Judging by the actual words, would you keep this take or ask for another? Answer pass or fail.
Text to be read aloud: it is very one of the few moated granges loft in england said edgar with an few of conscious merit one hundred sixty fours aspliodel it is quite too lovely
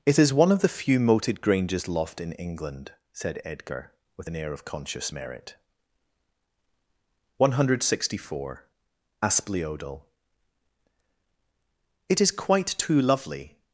fail